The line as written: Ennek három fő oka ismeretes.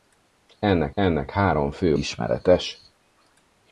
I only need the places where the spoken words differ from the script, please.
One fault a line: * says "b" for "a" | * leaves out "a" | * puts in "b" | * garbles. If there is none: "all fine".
* puts in "ennek"
* leaves out "oka"